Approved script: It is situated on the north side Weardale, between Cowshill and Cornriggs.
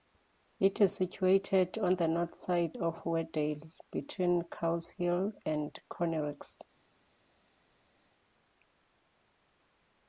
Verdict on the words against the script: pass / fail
fail